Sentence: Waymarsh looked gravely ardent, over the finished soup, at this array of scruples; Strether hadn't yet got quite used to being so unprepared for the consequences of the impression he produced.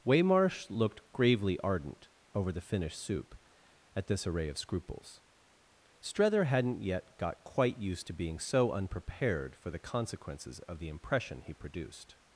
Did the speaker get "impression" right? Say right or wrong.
right